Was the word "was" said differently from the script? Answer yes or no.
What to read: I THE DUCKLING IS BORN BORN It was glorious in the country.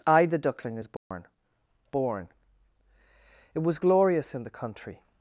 no